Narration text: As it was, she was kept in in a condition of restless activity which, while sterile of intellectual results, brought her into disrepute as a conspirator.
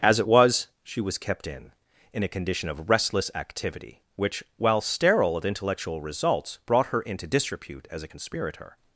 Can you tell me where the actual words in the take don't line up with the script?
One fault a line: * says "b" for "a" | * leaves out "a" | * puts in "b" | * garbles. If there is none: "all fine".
all fine